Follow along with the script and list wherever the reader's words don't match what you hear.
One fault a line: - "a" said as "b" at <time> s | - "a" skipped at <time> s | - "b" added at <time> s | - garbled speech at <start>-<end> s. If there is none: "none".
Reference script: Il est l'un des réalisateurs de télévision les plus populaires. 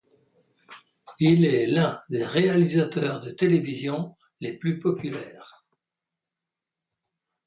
none